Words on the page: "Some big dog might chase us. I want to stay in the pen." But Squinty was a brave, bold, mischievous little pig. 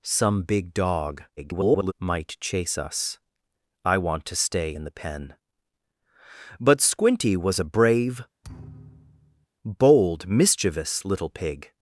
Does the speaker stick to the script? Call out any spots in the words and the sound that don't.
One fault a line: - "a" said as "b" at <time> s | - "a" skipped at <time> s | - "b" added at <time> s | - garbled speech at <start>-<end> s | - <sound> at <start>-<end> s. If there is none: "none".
- garbled speech at 1.4-1.9 s
- thud at 8.4-9.5 s